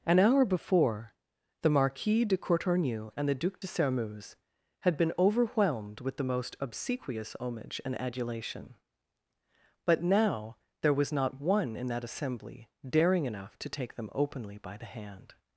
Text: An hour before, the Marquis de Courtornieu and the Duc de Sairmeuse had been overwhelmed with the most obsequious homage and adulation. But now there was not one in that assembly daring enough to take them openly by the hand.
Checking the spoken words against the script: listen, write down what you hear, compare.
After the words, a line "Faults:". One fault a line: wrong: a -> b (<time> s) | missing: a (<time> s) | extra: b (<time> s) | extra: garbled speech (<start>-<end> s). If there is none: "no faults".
An hour before, the Marquis de Courtornieu and the Duc de Sairmeuse had been overwhelmed with the most obsequious homage and adulation. But now there was not one in that assembly daring enough to take them openly by the hand.
Faults:
no faults